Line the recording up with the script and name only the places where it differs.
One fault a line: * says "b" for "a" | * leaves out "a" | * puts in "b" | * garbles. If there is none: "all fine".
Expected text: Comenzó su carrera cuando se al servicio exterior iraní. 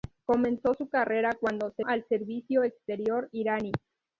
all fine